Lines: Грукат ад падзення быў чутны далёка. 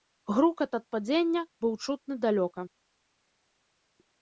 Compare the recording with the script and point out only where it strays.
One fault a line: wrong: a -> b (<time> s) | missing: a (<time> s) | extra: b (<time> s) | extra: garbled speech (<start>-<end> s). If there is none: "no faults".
no faults